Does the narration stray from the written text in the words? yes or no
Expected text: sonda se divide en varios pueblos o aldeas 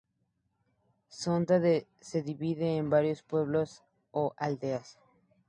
no